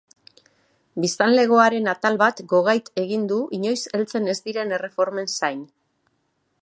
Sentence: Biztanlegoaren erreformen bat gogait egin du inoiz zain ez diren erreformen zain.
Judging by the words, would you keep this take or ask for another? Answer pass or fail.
fail